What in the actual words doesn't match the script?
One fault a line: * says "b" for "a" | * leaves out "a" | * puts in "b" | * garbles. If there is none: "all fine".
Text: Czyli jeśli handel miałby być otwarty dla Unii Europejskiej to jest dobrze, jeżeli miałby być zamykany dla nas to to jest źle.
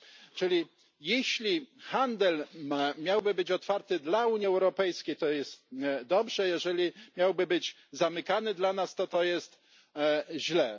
all fine